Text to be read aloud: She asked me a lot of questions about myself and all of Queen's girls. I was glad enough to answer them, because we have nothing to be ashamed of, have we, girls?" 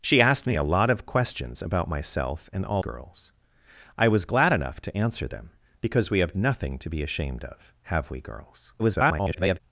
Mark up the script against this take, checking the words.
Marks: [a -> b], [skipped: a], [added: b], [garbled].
She asked me a lot of questions about myself and all [skipped: of Queen's] girls. I was glad enough to answer them, because we have nothing to be ashamed of, have we, girls?" [garbled]